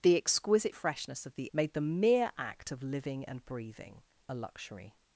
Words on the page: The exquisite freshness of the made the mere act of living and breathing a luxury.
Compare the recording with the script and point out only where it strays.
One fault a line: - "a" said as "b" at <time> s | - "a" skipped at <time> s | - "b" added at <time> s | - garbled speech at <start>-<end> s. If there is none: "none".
none